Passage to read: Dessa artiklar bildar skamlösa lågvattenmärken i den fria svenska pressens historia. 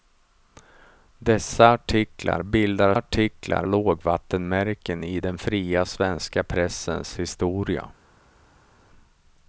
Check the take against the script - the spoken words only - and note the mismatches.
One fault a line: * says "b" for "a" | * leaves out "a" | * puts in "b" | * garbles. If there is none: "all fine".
* says "artiklar" for "skamlösa"